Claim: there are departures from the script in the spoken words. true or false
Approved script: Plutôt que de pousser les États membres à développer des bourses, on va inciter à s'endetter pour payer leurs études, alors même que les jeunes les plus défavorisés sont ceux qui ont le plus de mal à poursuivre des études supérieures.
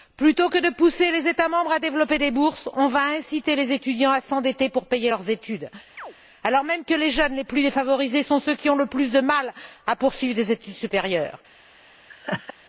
true